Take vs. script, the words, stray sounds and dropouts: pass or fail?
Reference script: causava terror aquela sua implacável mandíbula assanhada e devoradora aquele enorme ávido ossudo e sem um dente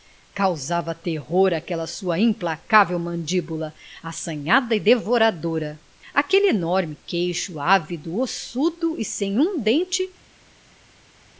fail